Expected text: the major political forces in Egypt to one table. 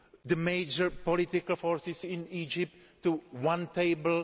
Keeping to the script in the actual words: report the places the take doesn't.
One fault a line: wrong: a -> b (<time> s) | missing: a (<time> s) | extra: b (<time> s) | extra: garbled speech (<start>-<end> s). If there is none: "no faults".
no faults